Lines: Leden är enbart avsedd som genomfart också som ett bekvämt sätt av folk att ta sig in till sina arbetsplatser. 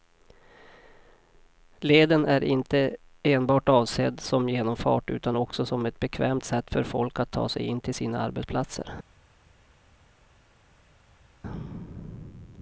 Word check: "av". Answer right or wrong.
wrong